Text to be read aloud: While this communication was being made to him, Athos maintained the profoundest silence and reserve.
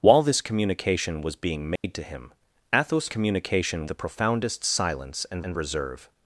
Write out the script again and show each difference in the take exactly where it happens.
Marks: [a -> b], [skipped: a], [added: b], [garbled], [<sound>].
While this communication was being made [dropout] to him, Athos [maintained -> communication] the profoundest silence and [added: and] reserve.